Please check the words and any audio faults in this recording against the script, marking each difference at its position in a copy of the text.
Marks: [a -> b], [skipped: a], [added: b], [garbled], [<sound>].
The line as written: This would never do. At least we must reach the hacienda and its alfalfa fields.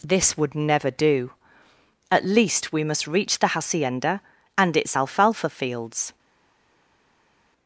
This would never do. At least we must reach the hacienda and its alfalfa fields.